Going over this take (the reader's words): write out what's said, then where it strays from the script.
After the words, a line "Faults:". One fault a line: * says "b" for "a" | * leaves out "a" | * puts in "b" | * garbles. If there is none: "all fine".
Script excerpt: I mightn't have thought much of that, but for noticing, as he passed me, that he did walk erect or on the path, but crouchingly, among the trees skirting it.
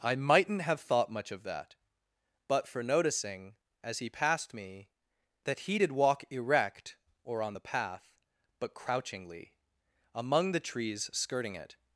I mightn't have thought much of that, but for noticing, as he passed me, that he did walk erect or on the path, but crouchingly, among the trees skirting it.
Faults:
all fine